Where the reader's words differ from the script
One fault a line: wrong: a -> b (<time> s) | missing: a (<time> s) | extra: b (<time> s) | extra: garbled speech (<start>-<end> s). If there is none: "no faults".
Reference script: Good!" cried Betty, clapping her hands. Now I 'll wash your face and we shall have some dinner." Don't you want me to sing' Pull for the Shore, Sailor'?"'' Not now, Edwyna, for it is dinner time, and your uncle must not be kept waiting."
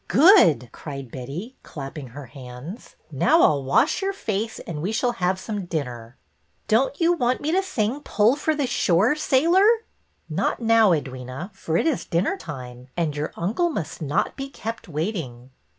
no faults